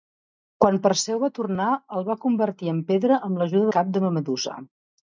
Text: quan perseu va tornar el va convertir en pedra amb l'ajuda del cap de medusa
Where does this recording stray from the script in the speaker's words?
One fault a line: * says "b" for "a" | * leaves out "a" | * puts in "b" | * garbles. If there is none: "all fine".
* leaves out "del"